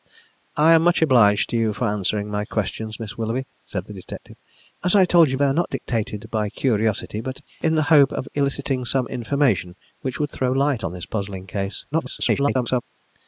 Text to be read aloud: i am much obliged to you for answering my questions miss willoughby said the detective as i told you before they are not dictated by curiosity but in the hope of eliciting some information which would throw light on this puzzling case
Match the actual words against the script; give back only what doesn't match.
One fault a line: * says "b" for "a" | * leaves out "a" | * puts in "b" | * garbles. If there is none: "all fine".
* leaves out "before"
* garbles